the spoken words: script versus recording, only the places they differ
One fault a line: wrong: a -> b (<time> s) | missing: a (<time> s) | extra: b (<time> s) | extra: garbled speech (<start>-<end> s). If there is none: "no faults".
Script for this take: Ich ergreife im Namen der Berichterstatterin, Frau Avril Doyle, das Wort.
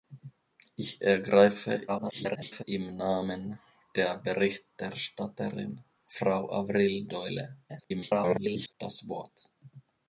extra: garbled speech (1.9-2.6 s)
extra: garbled speech (7.7-8.7 s)